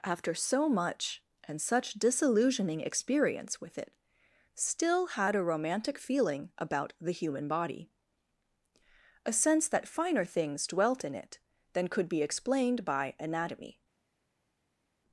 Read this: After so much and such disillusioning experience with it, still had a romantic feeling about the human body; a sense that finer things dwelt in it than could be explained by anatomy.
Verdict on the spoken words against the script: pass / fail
pass